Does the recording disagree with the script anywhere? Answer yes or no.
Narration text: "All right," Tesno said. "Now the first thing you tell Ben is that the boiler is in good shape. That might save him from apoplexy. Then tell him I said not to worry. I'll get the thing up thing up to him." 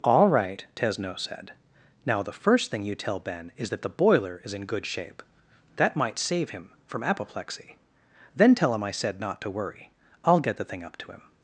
yes